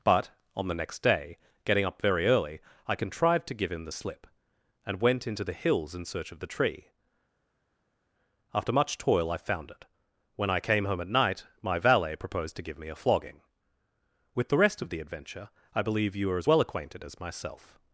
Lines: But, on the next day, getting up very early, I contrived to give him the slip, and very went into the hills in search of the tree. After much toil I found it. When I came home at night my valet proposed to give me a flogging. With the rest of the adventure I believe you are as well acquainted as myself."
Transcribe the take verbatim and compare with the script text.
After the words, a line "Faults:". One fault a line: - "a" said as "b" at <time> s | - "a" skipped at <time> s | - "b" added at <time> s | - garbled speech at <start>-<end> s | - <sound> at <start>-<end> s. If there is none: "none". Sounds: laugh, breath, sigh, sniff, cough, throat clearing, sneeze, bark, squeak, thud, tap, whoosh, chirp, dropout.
But, on the next day, getting up very early, I contrived to give him the slip, and went into the hills in search of the tree. After much toil I found it. When I came home at night my valet proposed to give me a flogging. With the rest of the adventure I believe you are as well acquainted as myself."
Faults:
- "very" skipped at 5.0 s